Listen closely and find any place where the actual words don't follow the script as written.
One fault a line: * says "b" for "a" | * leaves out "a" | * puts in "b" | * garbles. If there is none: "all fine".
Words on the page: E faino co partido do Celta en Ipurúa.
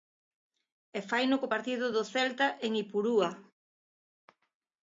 all fine